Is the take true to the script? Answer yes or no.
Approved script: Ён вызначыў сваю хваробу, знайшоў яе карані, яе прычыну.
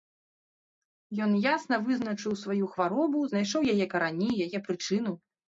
no